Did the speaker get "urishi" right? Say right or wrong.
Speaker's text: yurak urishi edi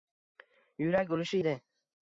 right